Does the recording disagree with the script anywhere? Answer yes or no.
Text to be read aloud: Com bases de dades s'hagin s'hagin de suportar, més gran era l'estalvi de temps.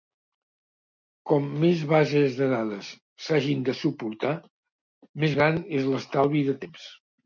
yes